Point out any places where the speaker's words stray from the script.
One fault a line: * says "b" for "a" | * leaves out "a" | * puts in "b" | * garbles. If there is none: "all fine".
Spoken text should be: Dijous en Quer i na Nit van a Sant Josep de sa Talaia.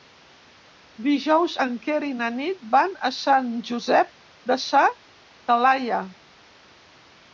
all fine